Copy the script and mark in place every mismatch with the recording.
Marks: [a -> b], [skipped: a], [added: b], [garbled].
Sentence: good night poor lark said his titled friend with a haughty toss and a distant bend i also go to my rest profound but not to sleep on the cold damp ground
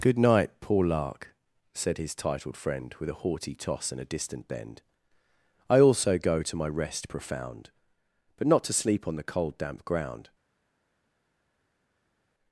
good night poor lark said his titled friend with a haughty toss and a distant bend i also go to my rest profound but not to sleep on the cold damp ground